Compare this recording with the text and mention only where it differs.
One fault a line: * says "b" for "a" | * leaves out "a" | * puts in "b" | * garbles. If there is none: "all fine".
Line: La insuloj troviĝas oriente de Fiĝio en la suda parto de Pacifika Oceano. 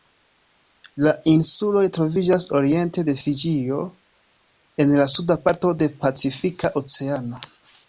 all fine